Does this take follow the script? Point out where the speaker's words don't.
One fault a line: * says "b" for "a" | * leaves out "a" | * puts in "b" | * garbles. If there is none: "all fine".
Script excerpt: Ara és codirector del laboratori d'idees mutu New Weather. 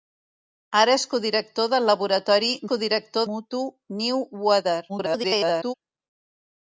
* says "codirector" for "d'idees"
* garbles